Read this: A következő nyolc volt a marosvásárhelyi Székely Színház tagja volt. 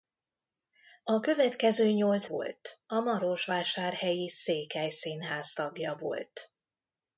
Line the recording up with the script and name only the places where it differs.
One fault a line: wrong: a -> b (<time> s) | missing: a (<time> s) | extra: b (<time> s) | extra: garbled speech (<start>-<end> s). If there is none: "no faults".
no faults